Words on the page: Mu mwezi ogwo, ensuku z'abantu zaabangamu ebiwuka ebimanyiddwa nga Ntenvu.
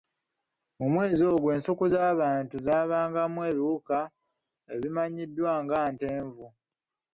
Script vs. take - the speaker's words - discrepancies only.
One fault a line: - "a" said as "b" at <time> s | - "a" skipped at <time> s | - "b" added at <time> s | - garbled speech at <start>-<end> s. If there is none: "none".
none